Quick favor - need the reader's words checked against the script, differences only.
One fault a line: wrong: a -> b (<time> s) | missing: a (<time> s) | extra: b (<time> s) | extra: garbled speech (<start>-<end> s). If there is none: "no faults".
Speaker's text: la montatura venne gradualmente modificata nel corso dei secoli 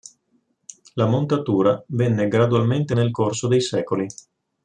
missing: modificata (3.0 s)